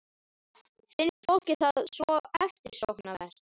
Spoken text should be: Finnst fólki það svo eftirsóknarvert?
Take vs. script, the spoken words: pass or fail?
pass